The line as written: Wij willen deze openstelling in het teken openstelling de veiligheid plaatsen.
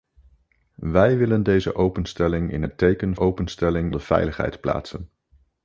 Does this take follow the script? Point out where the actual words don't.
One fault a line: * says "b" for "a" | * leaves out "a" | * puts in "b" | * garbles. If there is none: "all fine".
all fine